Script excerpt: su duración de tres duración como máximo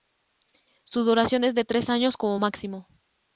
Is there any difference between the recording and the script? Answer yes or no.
yes